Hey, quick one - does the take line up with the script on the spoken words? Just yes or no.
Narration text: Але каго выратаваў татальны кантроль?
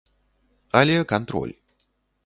no